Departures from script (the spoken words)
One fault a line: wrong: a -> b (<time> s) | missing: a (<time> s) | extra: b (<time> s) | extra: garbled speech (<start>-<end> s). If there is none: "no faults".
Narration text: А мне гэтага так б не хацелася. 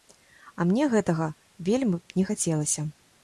wrong: так -> вельмі (1.7 s)